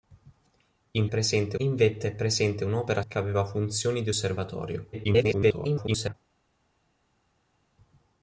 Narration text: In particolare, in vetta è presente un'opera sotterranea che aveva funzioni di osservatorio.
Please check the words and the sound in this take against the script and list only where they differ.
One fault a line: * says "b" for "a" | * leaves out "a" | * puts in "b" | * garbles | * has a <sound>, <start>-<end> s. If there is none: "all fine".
* says "presente" for "particolare"
* leaves out "sotterranea"
* garbles